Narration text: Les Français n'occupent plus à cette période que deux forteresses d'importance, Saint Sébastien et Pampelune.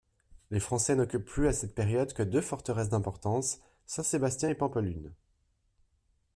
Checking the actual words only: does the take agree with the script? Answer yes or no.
yes